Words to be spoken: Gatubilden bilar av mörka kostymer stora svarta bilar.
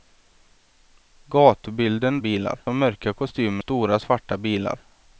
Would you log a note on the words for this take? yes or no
no